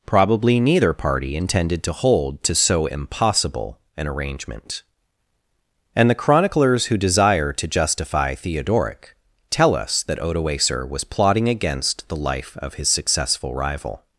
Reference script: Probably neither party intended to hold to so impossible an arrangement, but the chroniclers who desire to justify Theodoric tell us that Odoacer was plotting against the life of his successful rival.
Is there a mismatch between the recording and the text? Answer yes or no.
yes